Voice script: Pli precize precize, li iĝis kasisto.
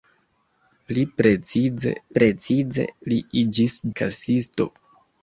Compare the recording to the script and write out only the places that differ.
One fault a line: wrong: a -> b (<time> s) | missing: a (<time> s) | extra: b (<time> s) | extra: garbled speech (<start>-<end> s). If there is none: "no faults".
no faults